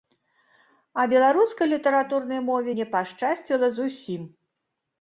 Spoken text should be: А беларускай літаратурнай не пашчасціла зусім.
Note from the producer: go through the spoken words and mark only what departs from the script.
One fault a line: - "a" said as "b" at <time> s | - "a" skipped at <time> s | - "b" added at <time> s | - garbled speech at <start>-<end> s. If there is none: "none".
- "мове" added at 2.5 s